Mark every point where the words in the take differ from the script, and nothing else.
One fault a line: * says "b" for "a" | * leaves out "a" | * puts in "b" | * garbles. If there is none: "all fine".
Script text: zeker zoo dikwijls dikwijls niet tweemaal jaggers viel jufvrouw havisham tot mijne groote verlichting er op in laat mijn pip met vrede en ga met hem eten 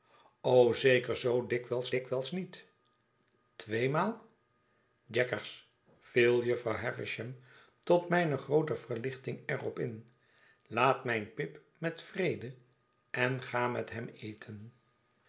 all fine